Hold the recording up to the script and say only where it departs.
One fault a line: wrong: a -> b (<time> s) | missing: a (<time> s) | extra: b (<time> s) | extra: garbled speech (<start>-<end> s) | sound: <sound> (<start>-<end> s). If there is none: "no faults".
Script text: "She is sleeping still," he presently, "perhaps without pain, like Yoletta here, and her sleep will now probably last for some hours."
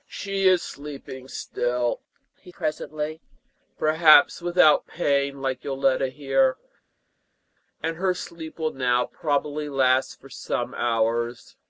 no faults